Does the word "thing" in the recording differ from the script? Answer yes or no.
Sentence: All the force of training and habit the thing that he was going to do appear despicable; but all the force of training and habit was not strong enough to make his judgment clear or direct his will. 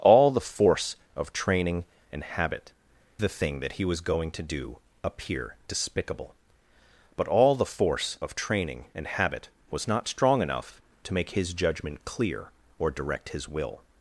no